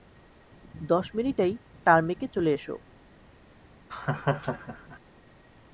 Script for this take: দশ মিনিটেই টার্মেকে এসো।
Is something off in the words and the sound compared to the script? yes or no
yes